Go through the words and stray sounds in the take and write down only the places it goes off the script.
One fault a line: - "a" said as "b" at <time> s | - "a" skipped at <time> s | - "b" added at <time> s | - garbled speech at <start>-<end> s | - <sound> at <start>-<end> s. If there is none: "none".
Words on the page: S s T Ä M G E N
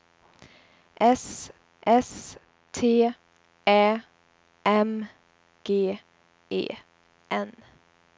none